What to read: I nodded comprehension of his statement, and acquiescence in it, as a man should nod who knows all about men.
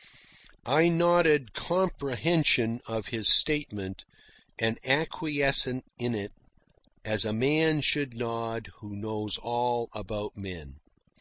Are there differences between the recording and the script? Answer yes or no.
no